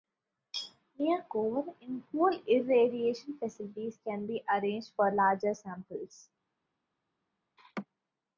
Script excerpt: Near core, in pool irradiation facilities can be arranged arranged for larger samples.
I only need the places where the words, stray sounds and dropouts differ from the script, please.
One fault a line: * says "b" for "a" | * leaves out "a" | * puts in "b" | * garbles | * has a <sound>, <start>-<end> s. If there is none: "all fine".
* leaves out "arranged"
* has a laugh, 7.6-7.9 s